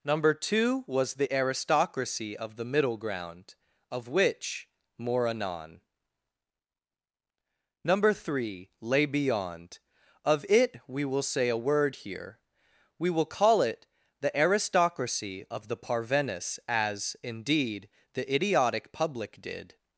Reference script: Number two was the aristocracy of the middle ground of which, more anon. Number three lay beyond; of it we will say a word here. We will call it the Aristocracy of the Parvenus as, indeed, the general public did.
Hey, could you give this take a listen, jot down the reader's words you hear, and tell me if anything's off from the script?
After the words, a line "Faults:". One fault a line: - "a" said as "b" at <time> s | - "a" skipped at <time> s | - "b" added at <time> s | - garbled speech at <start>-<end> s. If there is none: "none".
Number two was the aristocracy of the middle ground of which, more anon. Number three lay beyond; of it we will say a word here. We will call it the Aristocracy of the Parvenus as, indeed, the idiotic public did.
Faults:
- "general" said as "idiotic" at 18.3 s